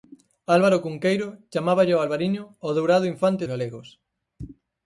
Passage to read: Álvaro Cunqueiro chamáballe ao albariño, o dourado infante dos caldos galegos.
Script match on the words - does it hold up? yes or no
no